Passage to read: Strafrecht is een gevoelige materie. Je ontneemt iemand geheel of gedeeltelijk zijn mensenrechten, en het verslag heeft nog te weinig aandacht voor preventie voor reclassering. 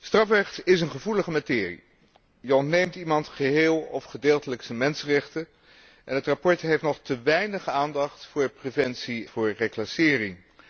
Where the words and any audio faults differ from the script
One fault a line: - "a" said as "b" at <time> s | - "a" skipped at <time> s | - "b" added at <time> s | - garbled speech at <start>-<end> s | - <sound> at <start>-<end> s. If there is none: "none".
none